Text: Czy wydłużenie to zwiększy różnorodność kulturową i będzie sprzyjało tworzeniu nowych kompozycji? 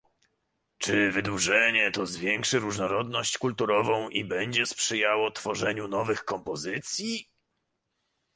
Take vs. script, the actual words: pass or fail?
pass